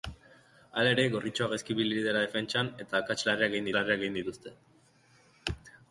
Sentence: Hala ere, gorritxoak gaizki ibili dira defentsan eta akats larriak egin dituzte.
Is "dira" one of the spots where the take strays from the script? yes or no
no